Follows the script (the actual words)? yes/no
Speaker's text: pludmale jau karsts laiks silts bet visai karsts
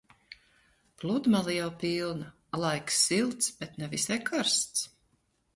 no